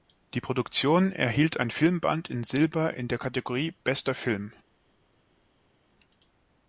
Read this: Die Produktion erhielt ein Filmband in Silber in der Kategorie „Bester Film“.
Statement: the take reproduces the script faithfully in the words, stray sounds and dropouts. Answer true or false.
true